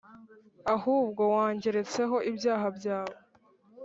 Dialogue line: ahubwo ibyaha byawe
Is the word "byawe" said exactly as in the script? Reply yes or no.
yes